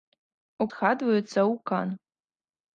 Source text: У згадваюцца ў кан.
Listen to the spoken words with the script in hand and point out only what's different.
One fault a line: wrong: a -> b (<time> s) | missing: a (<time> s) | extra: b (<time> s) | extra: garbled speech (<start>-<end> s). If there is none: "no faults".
no faults